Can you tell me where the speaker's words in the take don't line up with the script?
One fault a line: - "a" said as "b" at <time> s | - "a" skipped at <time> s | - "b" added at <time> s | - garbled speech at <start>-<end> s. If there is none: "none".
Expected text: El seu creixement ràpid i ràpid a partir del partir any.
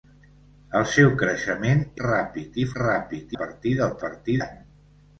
none